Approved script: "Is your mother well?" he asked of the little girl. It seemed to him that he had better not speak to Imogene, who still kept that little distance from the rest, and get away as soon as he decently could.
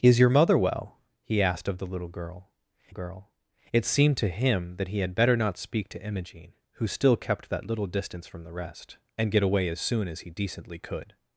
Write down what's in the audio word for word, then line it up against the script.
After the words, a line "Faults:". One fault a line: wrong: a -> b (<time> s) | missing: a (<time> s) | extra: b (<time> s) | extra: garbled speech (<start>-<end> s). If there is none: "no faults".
"Is your mother well?" he asked of the little girl girl. It seemed to him that he had better not speak to Imogene, who still kept that little distance from the rest, and get away as soon as he decently could.
Faults:
extra: girl (2.9 s)